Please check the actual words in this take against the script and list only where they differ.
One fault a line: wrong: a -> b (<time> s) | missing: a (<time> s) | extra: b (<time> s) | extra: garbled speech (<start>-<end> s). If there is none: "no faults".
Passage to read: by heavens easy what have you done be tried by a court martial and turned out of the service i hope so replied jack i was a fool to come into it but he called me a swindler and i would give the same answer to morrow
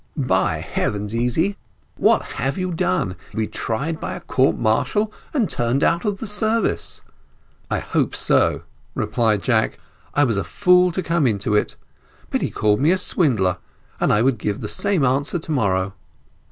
no faults